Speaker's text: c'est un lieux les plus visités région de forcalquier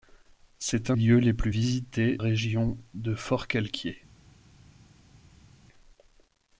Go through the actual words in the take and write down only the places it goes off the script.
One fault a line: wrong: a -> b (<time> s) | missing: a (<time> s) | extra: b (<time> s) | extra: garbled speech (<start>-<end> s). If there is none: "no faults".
no faults